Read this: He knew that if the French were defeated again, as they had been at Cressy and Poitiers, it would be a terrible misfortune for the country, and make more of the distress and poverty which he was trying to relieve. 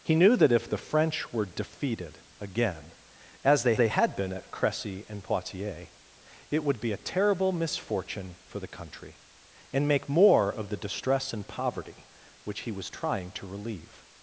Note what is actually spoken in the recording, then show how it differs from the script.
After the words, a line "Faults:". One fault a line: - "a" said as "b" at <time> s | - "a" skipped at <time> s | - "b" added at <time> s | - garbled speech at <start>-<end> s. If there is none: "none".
He knew that if the French were defeated again, as they they had been at Cressy and Poitiers, it would be a terrible misfortune for the country, and make more of the distress and poverty which he was trying to relieve.
Faults:
- "they" added at 3.8 s